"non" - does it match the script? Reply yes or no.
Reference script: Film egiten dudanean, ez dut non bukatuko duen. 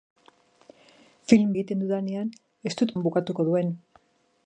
yes